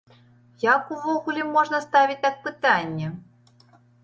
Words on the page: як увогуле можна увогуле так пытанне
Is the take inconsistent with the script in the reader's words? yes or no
yes